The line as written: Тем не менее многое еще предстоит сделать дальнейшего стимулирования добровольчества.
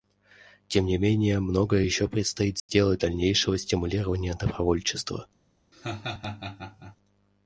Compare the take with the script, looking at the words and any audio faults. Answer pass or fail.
fail